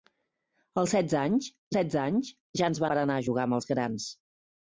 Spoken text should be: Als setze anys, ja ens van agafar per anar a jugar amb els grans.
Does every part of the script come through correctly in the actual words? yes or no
no